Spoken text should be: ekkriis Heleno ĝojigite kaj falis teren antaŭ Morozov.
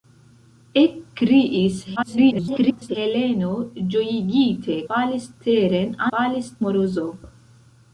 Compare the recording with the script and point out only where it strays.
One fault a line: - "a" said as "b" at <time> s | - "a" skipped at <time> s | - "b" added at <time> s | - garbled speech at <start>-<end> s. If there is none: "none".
- garbled speech at 2.0-3.0 s
- "kaj" skipped at 4.8 s
- "antaŭ" said as "falis" at 6.1 s